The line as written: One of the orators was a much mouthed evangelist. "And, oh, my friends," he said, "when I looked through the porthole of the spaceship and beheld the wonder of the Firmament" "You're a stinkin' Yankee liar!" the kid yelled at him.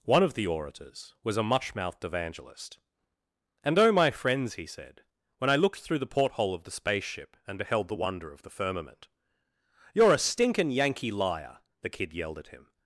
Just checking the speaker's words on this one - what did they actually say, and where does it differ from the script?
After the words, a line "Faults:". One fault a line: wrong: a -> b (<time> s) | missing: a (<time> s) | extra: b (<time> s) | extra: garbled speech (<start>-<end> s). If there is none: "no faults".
One of the orators was a much mouthed evangelist. "And, oh, my friends," he said, "when I looked through the porthole of the spaceship and beheld the wonder of the Firmament" "You're a stinkin' Yankee liar!" the kid yelled at him.
Faults:
no faults